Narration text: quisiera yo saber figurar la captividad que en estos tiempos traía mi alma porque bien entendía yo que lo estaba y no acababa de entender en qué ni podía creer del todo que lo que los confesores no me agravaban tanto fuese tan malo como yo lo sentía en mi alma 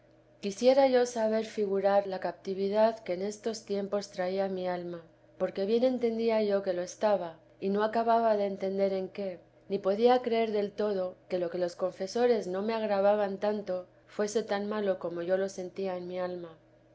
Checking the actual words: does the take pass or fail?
pass